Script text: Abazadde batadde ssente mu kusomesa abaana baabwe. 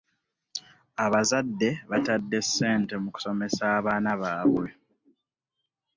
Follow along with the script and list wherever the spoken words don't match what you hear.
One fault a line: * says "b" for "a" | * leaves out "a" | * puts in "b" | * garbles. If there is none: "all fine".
all fine